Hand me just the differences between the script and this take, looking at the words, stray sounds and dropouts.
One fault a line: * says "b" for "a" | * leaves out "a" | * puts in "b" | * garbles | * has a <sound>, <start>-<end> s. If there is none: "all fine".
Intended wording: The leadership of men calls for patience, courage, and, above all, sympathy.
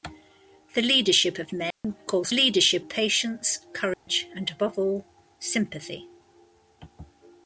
* has a dropout, 1.7-1.8 s
* says "leadership" for "for"
* has a dropout, 3.9-4.1 s